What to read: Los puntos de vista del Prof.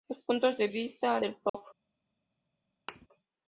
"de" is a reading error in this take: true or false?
false